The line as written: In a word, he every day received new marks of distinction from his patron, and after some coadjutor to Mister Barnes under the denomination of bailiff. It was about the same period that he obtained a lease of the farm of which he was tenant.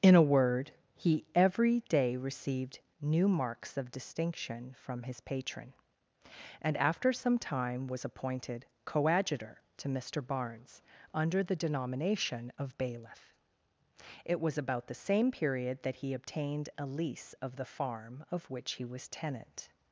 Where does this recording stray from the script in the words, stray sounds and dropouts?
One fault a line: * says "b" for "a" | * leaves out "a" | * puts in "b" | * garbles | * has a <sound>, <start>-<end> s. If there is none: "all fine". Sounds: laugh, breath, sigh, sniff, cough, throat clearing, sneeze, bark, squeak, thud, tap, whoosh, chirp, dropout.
* puts in "time was appointed"